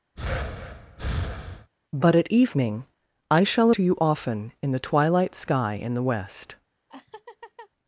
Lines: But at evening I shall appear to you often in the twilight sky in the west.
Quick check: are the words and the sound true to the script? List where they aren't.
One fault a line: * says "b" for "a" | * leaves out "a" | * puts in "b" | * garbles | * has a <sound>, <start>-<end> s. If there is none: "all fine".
* has a breath, 0.2-1.7 s
* leaves out "appear"
* has a laugh, 6.9-7.7 s